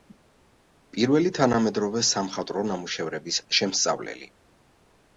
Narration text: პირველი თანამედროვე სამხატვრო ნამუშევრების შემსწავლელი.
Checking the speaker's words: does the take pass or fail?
pass